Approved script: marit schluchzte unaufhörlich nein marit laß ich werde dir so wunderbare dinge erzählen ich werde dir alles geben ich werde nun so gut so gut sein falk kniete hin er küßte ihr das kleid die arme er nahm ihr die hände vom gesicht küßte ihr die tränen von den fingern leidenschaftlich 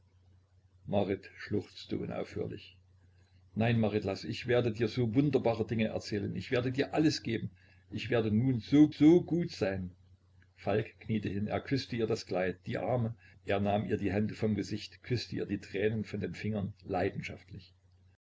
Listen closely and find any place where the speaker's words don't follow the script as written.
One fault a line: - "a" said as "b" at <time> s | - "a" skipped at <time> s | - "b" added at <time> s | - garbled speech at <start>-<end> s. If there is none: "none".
- "gut" skipped at 8.9 s